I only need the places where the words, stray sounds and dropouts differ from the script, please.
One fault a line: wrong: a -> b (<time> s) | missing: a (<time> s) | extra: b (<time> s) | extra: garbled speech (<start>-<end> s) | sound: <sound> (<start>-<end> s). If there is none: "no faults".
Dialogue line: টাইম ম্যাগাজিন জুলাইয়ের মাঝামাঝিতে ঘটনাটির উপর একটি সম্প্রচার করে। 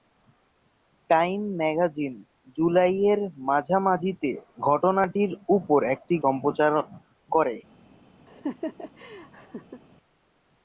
sound: laugh (8.3-9.8 s)